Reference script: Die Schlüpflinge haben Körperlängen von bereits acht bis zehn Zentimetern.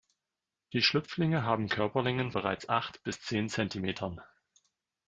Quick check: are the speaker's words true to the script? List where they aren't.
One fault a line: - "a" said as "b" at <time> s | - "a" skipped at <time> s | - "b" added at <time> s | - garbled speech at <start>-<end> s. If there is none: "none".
- "von" skipped at 2.3 s